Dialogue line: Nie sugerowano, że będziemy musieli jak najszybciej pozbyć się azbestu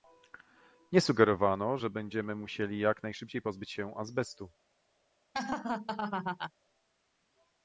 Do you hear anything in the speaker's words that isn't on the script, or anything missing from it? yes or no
no